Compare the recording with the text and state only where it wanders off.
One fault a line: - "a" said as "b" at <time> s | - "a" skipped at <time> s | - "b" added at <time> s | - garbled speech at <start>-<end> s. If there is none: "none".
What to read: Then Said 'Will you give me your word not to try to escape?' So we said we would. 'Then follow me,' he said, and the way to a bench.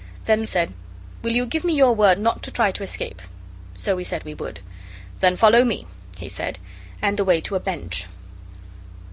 none